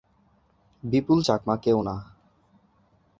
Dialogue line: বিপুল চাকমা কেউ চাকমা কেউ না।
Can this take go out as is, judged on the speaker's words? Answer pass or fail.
fail